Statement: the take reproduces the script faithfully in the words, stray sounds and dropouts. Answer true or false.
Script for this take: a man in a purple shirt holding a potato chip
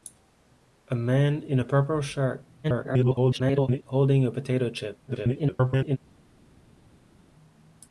false